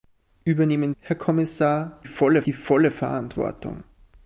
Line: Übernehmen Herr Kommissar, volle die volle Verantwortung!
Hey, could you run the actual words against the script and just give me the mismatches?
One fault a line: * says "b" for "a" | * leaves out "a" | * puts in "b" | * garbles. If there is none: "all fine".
all fine